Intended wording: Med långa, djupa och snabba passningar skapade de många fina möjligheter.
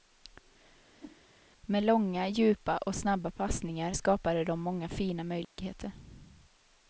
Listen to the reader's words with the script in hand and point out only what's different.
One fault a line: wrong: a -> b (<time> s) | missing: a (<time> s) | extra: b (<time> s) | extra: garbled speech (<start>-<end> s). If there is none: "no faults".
no faults